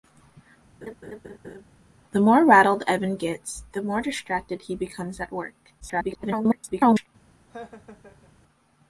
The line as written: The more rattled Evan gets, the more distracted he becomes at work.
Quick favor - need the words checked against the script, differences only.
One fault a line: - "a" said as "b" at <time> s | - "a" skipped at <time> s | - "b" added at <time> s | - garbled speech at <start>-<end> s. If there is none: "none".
- garbled speech at 5.8-7.1 s